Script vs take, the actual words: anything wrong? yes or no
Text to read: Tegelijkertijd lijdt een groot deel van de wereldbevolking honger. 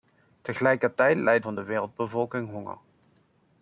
yes